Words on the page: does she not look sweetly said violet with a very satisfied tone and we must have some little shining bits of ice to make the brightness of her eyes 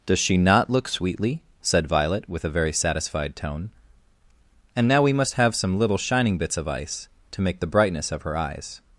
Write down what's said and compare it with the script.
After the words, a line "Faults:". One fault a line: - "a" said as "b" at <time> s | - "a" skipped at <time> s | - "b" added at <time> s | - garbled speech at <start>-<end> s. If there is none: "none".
does she not look sweetly said violet with a very satisfied tone and now we must have some little shining bits of ice to make the brightness of her eyes
Faults:
- "now" added at 4.9 s